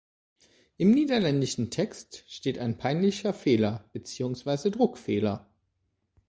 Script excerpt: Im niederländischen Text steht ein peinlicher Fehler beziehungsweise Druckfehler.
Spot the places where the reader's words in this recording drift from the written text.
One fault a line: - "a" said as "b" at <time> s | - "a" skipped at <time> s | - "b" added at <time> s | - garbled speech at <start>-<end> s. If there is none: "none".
none